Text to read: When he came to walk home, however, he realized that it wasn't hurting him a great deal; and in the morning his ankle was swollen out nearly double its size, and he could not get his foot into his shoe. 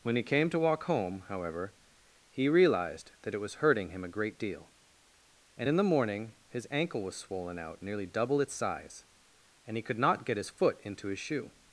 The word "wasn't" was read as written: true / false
false